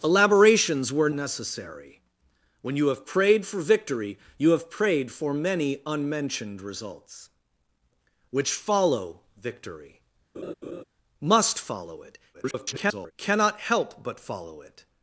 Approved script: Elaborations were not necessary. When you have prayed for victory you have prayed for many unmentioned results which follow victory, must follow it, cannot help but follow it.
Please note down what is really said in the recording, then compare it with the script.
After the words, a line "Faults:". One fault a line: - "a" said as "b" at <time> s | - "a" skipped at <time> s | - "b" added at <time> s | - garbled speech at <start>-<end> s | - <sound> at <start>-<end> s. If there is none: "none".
Elaborations were necessary. When you have prayed for victory you have prayed for many unmentioned results which follow victory, must follow it, [garbled] cannot help but follow it.
Faults:
- "not" skipped at 1.1 s
- laugh at 10.3-10.8 s
- garbled speech at 12.3-13.1 s